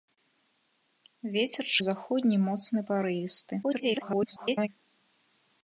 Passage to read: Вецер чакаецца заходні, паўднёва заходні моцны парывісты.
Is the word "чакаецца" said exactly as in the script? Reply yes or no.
no